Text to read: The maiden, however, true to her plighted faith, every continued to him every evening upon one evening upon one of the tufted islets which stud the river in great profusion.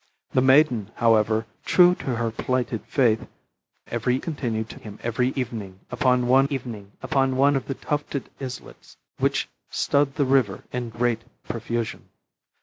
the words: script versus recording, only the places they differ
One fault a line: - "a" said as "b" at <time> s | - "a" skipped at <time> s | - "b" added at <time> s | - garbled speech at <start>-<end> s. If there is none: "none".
none